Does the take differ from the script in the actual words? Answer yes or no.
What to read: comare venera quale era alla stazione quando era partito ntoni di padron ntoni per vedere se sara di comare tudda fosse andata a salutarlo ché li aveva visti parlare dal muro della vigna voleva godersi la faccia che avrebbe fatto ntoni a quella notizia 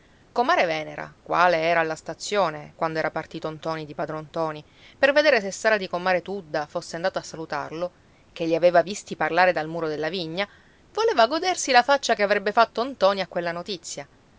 no